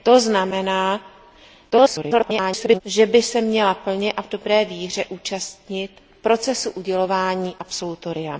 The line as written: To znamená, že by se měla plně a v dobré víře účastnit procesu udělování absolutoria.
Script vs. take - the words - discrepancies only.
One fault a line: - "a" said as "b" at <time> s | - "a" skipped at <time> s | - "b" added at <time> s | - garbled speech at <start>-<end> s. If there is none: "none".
- garbled speech at 1.7-2.8 s